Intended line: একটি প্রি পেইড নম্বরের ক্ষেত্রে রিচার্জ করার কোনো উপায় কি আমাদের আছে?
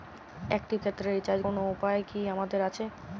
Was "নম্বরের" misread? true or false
true